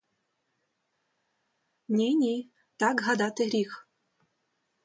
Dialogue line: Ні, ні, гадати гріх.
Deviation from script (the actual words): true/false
true